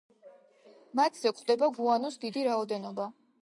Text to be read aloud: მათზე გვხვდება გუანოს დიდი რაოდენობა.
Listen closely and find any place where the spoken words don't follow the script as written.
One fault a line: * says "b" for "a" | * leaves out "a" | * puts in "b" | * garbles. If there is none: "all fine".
all fine